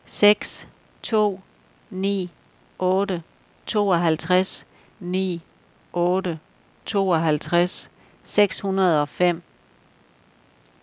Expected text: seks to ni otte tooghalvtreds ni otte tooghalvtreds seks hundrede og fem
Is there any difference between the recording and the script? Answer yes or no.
no